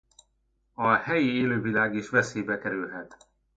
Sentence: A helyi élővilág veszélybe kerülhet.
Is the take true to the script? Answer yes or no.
no